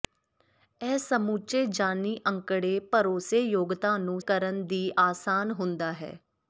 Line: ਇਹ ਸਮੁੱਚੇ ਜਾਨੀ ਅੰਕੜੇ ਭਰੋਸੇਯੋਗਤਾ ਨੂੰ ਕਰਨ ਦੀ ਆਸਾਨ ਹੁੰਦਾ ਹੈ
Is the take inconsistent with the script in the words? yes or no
no